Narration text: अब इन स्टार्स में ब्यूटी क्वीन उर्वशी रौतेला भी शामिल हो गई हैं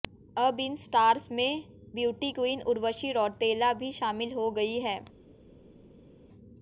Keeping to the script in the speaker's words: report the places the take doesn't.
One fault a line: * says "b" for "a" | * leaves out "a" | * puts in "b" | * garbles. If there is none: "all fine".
all fine